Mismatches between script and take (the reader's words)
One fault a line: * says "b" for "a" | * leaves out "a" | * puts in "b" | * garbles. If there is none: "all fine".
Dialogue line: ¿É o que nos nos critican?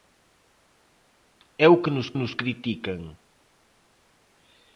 all fine